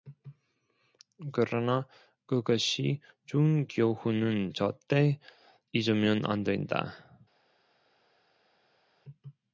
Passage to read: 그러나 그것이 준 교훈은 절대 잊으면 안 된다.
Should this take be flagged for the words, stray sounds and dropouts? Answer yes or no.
no